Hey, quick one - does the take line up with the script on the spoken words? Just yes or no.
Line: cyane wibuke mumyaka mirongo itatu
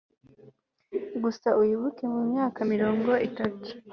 no